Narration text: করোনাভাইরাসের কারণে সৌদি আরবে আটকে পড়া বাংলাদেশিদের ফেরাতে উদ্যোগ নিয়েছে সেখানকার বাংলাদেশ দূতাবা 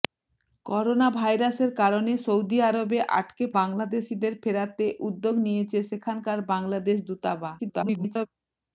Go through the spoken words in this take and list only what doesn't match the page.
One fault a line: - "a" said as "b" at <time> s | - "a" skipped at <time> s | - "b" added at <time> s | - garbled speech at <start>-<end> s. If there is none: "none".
- "পড়া" skipped at 3.5 s
- garbled speech at 7.6-8.3 s